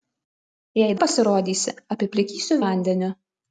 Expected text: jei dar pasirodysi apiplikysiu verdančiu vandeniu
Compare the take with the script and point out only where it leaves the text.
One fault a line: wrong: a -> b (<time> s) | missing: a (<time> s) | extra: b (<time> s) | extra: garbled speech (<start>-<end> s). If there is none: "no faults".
missing: dar (0.9 s)
missing: verdančiu (2.6 s)